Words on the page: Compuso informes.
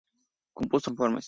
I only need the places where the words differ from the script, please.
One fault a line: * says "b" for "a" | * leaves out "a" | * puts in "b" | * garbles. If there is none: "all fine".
all fine